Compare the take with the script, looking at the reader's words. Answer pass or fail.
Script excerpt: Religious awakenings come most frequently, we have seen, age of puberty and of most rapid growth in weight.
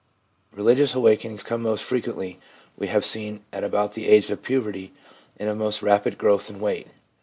fail